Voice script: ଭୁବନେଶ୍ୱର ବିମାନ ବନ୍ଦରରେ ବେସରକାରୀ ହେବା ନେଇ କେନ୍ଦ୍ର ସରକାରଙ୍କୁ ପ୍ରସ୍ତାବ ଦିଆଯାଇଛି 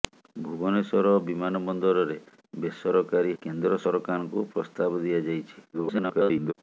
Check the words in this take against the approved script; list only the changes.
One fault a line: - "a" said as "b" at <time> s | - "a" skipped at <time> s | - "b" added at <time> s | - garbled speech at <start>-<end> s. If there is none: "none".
- "ହେବା ନେଇ" skipped at 3.4 s
- garbled speech at 5.7-6.5 s